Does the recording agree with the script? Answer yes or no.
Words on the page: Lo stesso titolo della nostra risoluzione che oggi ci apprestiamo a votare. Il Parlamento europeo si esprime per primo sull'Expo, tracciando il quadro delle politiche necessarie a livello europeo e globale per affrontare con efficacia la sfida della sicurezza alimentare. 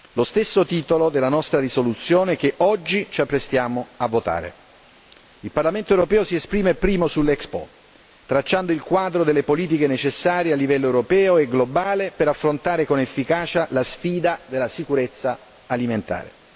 no